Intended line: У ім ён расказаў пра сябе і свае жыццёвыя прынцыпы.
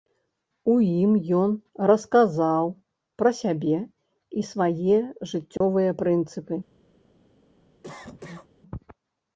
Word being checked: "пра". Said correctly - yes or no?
yes